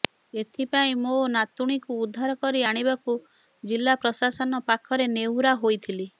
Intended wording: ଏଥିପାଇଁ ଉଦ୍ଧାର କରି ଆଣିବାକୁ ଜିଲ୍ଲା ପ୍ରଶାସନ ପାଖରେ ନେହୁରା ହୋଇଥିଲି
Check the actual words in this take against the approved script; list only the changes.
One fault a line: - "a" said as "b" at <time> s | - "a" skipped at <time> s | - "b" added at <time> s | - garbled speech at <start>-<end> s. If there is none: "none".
- "ମୋ ନାତୁଣୀକୁ" added at 1.0 s